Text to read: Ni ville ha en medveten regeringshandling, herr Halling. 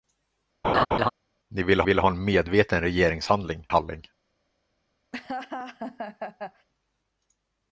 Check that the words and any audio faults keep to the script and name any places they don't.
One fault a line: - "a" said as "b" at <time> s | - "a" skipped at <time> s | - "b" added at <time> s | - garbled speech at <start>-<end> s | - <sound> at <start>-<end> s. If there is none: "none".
- laugh at 0.6-1.1 s
- "ville" added at 1.8 s
- "herr" skipped at 3.7 s
- laugh at 5.1-6.7 s